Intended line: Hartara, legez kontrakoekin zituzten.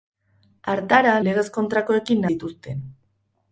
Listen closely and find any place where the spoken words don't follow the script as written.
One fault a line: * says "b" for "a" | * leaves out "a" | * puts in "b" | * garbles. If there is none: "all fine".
all fine